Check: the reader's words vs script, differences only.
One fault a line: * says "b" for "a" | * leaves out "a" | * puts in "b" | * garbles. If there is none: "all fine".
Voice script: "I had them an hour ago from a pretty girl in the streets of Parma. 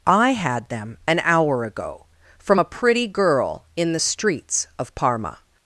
all fine